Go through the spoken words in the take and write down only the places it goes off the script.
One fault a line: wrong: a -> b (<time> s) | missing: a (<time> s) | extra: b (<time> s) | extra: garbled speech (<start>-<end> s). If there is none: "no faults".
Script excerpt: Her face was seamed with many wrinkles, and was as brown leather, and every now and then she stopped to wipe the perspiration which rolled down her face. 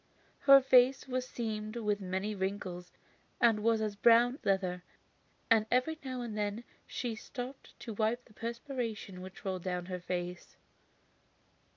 no faults